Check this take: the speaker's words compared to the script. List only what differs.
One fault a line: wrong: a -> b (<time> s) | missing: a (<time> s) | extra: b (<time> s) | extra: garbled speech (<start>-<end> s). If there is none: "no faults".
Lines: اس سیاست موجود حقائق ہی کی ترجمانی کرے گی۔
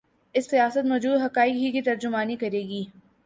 no faults